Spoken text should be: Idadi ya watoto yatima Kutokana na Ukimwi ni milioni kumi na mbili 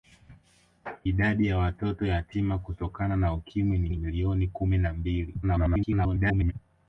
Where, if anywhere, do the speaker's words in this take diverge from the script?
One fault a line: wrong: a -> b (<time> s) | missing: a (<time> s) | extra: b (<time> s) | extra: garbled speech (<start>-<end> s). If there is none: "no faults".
extra: ni (3.9 s)
extra: garbled speech (5.4-6.5 s)